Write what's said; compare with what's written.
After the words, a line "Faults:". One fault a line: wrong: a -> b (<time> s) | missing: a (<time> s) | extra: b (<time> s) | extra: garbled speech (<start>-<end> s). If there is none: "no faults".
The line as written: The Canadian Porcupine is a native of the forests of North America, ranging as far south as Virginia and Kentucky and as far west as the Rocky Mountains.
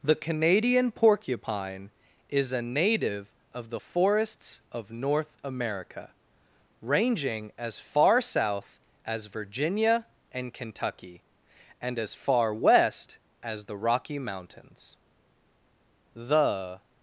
The Canadian Porcupine is a native of the forests of North America, ranging as far south as Virginia and Kentucky and as far west as the Rocky Mountains. "The
Faults:
extra: The (16.1 s)